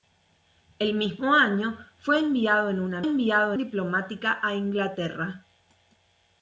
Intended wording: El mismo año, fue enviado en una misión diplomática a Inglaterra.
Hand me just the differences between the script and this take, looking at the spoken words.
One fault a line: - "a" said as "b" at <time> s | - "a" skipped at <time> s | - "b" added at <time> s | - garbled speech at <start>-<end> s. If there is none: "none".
- "misión" said as "enviado" at 3.0 s